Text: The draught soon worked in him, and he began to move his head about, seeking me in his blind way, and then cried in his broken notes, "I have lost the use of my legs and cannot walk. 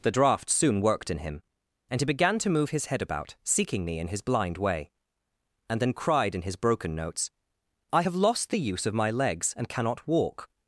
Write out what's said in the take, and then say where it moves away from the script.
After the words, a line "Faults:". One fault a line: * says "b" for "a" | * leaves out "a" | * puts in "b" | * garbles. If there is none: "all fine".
The draught soon worked in him, and he began to move his head about, seeking me in his blind way, and then cried in his broken notes, "I have lost the use of my legs and cannot walk.
Faults:
all fine